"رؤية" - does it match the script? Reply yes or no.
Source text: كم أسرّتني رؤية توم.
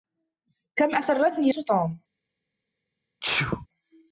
no